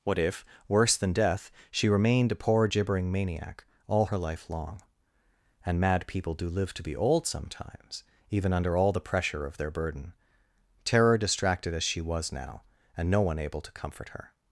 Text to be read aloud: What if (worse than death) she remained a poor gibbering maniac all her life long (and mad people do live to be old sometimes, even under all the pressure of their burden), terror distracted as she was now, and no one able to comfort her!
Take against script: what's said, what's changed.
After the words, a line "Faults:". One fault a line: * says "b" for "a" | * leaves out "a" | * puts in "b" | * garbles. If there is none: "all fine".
What if (worse than death) she remained a poor gibbering maniac all her life long (and mad people do live to be old sometimes, even under all the pressure of their burden), terror distracted as she was now, and no one able to comfort her!
Faults:
all fine